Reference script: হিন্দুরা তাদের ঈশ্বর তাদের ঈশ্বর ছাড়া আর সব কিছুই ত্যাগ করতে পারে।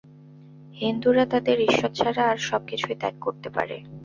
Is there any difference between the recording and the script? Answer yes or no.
yes